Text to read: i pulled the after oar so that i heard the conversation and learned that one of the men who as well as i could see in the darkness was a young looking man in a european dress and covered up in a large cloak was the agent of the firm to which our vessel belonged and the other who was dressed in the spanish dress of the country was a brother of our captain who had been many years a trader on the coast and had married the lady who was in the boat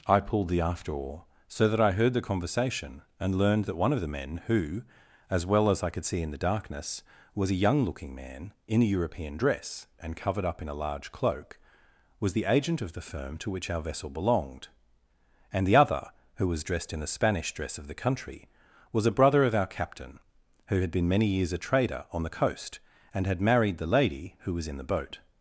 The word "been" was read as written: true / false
true